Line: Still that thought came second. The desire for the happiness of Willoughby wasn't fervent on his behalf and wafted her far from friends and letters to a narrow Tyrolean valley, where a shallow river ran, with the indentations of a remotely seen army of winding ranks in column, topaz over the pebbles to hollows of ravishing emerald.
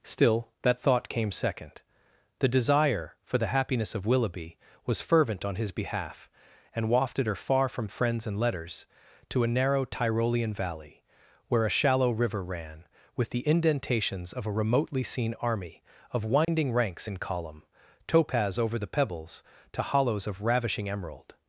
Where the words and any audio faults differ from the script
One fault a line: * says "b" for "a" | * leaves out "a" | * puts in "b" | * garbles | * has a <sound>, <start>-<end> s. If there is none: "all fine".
* says "was" for "wasn't"
* has a dropout, 16.4-16.5 s